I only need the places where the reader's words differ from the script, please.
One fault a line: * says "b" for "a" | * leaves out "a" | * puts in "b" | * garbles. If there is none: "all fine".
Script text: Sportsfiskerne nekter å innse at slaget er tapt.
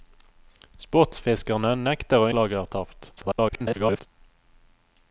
* leaves out "innse at"
* garbles